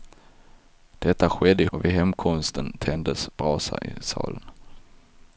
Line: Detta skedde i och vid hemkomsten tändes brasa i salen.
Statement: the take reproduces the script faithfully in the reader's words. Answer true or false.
true